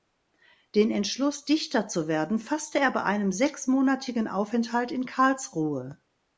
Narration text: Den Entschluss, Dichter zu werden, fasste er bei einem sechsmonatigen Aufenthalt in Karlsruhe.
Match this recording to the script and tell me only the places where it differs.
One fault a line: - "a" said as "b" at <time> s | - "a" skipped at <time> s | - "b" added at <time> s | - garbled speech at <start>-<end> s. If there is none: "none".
none